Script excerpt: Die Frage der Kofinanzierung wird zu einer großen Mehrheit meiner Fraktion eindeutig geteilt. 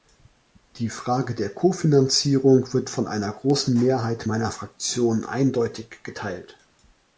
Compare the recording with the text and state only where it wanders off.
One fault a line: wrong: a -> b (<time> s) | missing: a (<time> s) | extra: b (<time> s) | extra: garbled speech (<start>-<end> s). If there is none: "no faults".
wrong: zu -> von (2.9 s)